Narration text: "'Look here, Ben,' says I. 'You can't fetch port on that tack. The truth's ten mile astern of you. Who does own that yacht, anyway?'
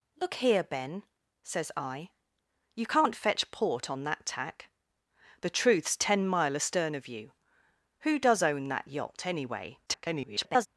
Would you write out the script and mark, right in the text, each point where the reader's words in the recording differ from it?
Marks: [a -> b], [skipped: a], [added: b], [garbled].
"'Look here, Ben,' says I. 'You can't fetch port on that tack. The truth's ten mile astern of you. Who does own that yacht, anyway?' [garbled]